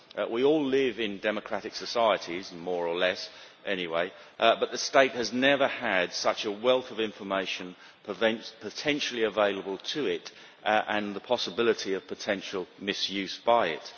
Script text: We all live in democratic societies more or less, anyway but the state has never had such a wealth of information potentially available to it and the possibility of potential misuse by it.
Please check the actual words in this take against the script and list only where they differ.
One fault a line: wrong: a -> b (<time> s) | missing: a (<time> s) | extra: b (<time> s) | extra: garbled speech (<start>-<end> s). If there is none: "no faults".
no faults